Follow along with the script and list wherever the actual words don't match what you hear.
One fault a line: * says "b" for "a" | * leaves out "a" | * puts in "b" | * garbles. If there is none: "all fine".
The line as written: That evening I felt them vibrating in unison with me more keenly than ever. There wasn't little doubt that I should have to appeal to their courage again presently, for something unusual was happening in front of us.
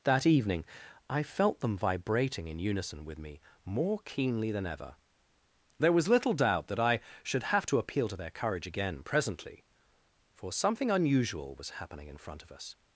* says "was" for "wasn't"